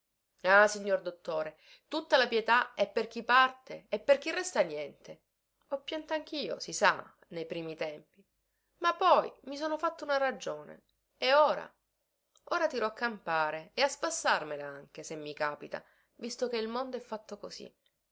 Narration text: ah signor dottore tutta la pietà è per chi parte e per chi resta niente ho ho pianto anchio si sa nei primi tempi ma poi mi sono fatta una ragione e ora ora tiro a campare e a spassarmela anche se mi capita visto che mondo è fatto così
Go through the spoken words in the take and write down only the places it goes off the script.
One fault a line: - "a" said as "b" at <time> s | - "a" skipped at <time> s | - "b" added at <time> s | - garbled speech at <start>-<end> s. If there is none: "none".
- "ho" skipped at 5.8 s
- "il" added at 16.6 s